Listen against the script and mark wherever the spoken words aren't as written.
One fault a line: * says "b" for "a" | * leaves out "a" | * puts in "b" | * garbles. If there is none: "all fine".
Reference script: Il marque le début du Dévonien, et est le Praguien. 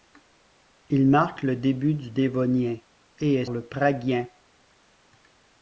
all fine